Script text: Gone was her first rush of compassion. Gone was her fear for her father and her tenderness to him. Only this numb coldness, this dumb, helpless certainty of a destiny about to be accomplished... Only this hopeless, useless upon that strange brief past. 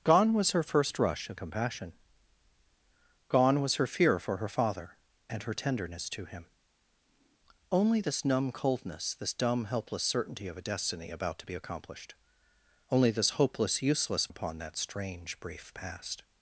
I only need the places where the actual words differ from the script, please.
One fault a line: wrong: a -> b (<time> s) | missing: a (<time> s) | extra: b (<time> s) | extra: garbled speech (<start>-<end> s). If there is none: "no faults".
no faults